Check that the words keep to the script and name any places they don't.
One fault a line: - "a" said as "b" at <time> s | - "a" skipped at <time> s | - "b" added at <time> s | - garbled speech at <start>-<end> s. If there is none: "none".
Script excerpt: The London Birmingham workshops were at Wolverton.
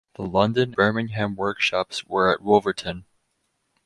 none